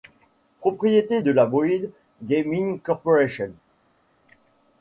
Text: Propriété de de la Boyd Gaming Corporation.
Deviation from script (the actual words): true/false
true